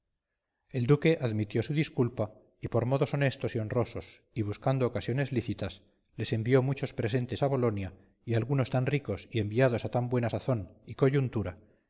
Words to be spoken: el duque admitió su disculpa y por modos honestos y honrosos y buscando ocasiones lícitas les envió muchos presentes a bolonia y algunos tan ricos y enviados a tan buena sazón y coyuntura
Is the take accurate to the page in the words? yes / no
yes